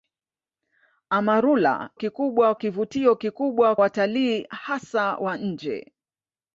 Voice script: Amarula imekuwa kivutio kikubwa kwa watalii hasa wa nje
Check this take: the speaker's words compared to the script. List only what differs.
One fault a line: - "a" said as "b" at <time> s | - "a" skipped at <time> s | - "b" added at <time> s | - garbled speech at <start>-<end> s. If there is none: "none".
- "imekuwa" said as "kikubwa" at 1.9 s
- "kwa" skipped at 3.8 s